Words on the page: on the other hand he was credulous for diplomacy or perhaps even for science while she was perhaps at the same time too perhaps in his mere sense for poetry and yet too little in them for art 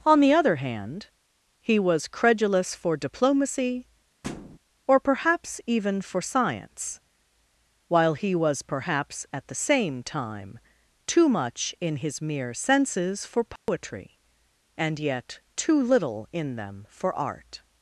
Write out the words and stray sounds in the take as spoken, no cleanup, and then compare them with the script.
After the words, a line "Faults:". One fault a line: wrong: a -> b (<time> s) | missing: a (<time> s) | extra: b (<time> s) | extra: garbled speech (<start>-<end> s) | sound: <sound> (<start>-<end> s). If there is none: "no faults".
on the other hand he was credulous for diplomacy or perhaps even for science while he was perhaps at the same time too much in his mere senses for poetry and yet too little in them for art
Faults:
sound: thud (4.2-4.6 s)
wrong: she -> he (8.2 s)
wrong: perhaps -> much (11.3 s)
wrong: sense -> senses (12.5 s)
sound: dropout (13.6-13.7 s)